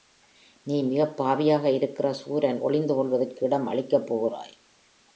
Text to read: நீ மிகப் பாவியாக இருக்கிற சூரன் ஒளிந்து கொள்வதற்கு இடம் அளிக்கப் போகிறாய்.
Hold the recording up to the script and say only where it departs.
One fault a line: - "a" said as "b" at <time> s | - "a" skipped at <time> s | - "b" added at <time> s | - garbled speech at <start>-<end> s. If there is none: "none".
none